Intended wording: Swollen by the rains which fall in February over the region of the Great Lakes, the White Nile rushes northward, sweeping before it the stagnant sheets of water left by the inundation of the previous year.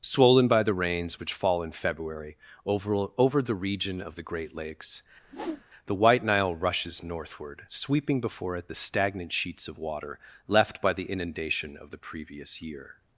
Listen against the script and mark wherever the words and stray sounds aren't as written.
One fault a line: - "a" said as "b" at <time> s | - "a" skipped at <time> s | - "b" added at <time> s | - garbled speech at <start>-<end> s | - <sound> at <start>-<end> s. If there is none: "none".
- "over" added at 3.2 s
- whoosh at 5.2-5.6 s